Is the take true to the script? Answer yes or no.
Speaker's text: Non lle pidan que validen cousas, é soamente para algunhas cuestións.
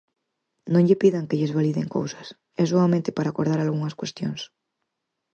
no